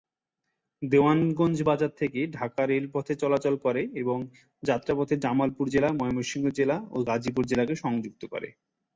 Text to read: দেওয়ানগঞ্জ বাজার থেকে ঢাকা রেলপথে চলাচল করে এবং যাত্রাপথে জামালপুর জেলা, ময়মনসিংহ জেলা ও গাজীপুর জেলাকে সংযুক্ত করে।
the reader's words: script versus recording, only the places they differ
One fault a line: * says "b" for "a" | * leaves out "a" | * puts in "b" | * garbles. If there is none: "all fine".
all fine